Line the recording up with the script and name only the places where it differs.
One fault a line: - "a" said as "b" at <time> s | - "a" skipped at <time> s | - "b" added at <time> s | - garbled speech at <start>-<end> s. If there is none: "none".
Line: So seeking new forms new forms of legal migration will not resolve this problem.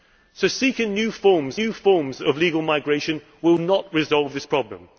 none